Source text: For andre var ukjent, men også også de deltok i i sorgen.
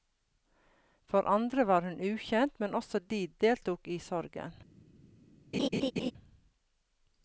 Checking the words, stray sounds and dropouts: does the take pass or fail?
fail